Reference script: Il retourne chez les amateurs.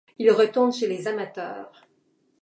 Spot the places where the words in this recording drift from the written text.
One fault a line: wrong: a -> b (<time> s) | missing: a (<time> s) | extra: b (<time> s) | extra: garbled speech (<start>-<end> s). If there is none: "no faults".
no faults